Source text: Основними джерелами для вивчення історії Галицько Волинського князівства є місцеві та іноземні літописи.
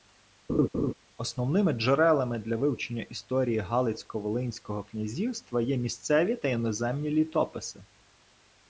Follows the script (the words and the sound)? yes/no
no